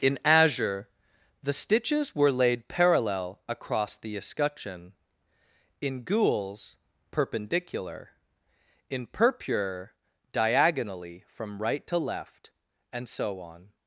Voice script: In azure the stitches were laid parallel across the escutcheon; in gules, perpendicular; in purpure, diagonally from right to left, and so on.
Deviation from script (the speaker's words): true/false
false